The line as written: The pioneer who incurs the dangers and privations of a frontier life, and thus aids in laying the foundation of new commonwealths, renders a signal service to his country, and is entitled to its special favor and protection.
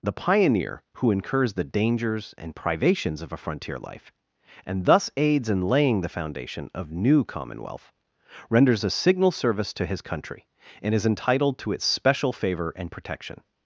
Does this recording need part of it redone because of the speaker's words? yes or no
yes